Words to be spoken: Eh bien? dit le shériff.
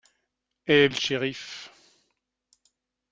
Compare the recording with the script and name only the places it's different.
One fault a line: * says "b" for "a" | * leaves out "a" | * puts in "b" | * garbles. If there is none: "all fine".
* leaves out "bien dit"